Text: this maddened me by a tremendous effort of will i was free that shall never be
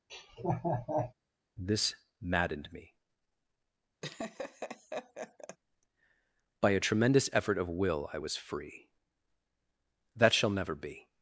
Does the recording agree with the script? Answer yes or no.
yes